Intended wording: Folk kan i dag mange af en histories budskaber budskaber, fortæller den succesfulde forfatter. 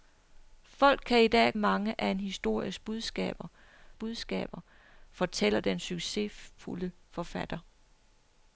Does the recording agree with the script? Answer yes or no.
yes